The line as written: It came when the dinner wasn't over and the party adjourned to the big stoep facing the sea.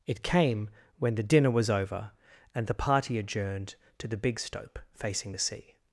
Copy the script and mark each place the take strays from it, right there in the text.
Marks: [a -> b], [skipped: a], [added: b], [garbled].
It came when the dinner [wasn't -> was] over and the party adjourned to the big stoep facing the sea.